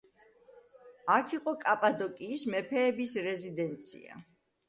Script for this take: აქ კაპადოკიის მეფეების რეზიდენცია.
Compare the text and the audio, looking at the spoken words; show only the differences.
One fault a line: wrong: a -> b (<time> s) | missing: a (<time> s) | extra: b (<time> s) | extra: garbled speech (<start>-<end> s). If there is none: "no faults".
extra: იყო (1.4 s)